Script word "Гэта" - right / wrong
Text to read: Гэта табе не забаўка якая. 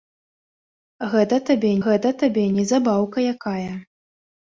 right